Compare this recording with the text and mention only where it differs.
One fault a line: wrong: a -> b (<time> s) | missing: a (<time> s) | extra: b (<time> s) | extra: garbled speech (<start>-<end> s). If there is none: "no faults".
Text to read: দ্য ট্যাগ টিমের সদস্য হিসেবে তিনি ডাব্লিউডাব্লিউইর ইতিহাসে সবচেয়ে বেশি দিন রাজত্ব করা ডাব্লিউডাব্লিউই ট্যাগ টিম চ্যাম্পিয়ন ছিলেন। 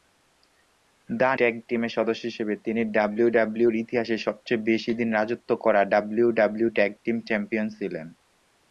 no faults